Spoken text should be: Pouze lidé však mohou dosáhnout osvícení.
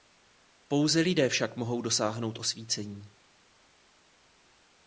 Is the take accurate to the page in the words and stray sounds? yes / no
yes